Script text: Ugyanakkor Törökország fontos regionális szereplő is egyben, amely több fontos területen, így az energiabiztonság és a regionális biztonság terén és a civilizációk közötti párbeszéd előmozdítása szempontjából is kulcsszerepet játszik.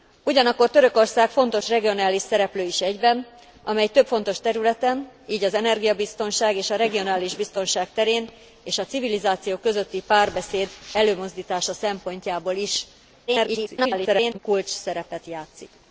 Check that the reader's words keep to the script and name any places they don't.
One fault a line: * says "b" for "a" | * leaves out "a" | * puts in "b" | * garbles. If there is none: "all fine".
* garbles